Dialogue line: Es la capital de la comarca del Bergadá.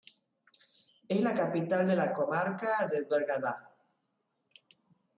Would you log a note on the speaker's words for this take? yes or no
no